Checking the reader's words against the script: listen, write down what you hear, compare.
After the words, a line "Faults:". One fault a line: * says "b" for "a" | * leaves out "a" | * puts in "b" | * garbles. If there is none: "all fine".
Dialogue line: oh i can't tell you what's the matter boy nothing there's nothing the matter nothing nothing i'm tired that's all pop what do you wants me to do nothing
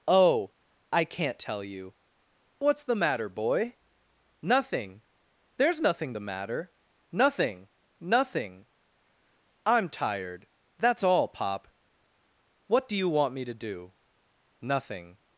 oh i can't tell you what's the matter boy nothing there's nothing the matter nothing nothing i'm tired that's all pop what do you want me to do nothing
Faults:
* says "want" for "wants"